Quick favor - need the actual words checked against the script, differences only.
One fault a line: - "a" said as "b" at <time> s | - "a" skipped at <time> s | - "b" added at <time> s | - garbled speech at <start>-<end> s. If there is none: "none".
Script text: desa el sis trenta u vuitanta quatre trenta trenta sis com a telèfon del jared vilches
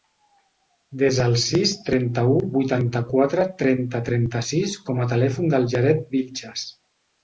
none